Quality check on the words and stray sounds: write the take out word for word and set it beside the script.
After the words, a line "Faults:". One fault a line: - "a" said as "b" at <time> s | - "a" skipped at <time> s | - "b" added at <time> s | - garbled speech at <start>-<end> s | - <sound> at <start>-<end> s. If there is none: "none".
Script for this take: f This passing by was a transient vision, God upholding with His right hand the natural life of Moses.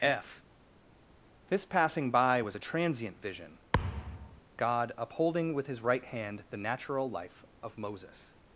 f This passing by was a transient vision, God upholding with His right hand the natural life of Moses.
Faults:
- thud at 3.7-4.4 s